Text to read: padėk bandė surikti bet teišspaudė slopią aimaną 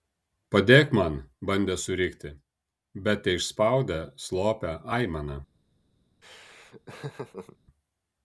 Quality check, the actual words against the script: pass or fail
fail